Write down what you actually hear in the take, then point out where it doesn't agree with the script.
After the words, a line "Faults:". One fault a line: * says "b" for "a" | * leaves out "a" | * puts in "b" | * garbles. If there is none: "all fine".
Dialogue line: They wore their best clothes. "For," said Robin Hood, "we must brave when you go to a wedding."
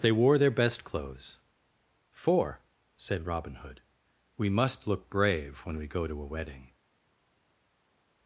They wore their best clothes. "For," said Robin Hood, "we must look brave when we go to a wedding."
Faults:
* puts in "look"
* says "we" for "you"